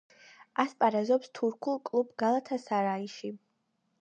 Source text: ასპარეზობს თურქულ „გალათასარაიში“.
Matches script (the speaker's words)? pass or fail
fail